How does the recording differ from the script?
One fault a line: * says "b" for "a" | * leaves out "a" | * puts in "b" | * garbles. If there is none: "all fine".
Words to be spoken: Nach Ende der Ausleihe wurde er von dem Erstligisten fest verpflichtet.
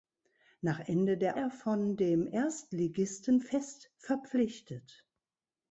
* leaves out "Ausleihe wurde"